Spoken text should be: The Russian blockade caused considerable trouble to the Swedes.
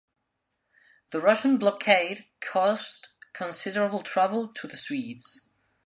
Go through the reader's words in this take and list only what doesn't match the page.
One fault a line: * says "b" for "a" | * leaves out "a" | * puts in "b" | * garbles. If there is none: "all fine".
all fine